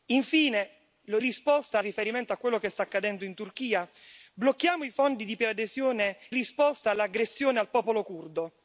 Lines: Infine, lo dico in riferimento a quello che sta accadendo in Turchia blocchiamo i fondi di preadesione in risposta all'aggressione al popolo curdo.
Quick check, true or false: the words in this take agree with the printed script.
false